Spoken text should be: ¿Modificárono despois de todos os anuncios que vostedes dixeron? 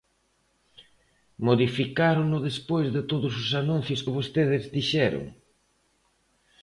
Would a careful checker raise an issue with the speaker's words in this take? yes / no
no